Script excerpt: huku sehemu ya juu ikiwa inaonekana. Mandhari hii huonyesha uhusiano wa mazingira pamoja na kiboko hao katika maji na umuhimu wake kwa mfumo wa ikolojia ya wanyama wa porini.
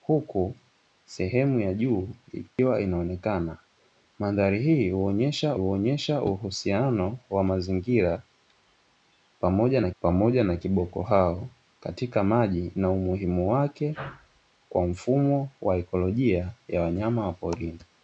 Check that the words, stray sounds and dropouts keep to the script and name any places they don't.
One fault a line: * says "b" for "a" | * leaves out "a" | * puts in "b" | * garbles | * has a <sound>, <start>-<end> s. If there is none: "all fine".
* has a dropout, 2.5-2.6 s
* puts in "huonyesha"
* puts in "pamoja na"